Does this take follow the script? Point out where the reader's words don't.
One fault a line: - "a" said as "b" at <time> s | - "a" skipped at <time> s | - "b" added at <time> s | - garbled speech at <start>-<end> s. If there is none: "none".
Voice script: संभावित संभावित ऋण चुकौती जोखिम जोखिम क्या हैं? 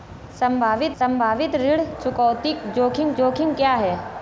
none